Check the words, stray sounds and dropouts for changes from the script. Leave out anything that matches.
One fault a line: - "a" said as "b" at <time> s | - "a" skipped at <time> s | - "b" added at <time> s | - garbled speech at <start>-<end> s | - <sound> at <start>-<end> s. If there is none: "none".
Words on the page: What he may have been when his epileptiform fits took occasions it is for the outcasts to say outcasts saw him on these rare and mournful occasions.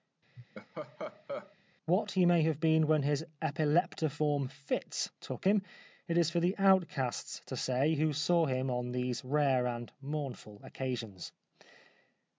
- laugh at 0.4-1.6 s
- "occasions" said as "him" at 5.4 s
- "outcasts" said as "who" at 8.0 s